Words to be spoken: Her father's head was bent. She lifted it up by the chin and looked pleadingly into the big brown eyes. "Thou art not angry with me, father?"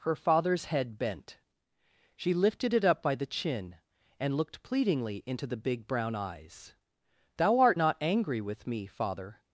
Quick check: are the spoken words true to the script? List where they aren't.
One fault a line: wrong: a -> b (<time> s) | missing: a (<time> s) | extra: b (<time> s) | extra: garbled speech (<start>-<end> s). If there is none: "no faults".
missing: was (1.0 s)